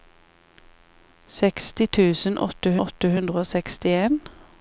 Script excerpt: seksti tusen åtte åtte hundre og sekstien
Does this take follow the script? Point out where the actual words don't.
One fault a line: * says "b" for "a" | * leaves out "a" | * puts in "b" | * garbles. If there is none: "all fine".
all fine